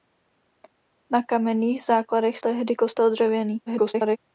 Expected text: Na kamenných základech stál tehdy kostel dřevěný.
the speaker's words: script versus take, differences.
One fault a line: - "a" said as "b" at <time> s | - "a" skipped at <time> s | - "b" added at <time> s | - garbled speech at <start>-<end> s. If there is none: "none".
- "stál" skipped at 2.4 s
- garbled speech at 3.7-4.2 s